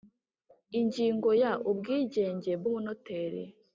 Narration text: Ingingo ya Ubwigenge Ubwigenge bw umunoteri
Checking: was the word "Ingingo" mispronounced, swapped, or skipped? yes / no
no